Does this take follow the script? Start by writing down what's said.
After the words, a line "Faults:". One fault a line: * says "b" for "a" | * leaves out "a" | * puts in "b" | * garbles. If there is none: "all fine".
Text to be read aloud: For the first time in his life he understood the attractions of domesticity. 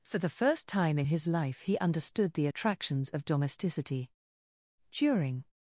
For the first time in his life he understood the attractions of domesticity. During
Faults:
* puts in "During"